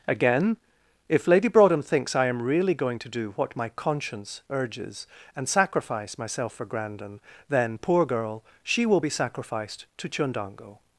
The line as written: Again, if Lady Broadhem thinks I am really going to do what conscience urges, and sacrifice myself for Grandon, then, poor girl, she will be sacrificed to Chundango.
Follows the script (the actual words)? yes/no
no